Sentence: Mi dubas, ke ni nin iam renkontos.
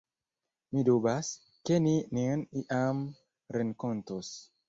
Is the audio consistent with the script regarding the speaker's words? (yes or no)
yes